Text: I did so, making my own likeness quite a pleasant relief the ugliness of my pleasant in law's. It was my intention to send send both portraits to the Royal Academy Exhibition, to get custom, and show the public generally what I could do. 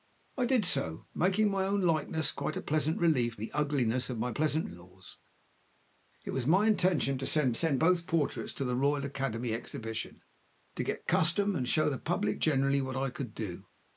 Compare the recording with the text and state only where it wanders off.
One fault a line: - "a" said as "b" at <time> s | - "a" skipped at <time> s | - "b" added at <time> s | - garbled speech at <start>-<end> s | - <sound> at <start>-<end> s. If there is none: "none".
none